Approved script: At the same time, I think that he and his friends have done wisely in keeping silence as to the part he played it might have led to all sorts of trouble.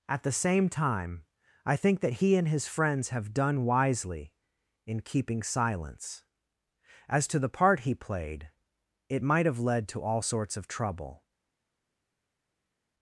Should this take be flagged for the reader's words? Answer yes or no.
no